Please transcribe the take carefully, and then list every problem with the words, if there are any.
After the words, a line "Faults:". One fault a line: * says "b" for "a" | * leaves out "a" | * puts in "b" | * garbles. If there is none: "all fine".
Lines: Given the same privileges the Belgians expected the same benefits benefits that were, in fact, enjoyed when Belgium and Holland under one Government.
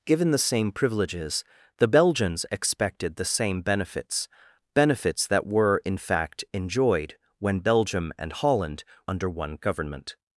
Given the same privileges the Belgians expected the same benefits benefits that were, in fact, enjoyed when Belgium and Holland under one Government.
Faults:
all fine